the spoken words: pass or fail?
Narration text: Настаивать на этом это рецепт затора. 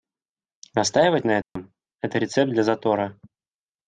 fail